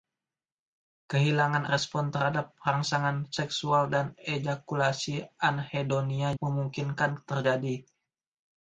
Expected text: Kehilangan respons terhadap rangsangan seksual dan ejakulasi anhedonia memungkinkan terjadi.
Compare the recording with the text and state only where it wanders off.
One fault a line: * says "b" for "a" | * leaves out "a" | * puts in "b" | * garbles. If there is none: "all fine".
all fine